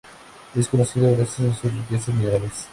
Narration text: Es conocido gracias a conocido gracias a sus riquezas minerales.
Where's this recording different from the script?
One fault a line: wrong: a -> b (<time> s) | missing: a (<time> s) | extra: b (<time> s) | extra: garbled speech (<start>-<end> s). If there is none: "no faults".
missing: conocido gracias a (1.6 s)